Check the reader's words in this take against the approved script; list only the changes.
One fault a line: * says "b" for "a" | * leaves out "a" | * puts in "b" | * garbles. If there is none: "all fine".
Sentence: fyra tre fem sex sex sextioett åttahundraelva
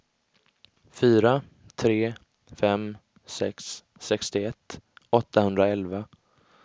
* leaves out "sex"